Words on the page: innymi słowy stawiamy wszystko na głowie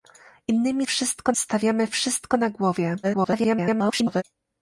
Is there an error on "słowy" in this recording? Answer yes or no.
yes